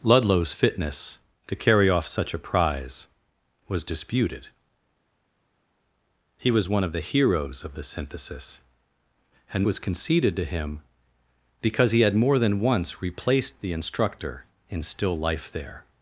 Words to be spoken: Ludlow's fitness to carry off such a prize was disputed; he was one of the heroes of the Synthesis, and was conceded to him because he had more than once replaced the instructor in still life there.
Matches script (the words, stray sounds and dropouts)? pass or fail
pass